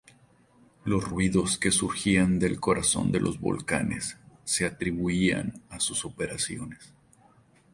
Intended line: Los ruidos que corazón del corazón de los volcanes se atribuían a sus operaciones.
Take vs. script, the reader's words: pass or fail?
fail